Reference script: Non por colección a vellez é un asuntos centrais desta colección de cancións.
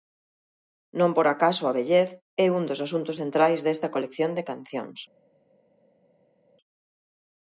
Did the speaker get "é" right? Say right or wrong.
right